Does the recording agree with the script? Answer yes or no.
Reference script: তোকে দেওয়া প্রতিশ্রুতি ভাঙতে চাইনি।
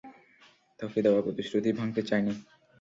yes